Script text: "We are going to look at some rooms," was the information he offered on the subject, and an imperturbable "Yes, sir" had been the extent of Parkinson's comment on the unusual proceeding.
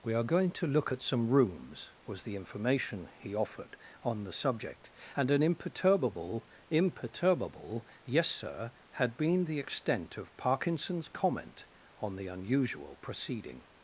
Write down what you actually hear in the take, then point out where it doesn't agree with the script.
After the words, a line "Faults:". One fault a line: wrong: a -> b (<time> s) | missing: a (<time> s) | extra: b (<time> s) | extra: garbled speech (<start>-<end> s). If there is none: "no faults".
"We are going to look at some rooms," was the information he offered on the subject, and an imperturbable imperturbable "Yes, sir" had been the extent of Parkinson's comment on the unusual proceeding.
Faults:
extra: imperturbable (6.7 s)